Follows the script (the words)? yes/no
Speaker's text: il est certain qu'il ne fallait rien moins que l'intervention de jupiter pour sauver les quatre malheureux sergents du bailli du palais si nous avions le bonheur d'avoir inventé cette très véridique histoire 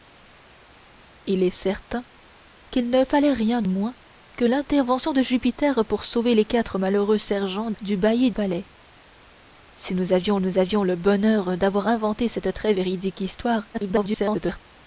no